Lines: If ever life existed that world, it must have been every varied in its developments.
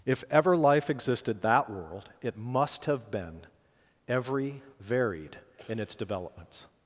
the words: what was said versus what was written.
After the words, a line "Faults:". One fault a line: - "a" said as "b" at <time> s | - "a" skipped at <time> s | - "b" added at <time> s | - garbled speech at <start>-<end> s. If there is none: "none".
If ever life existed that world, it must have been every varied in its developments.
Faults:
none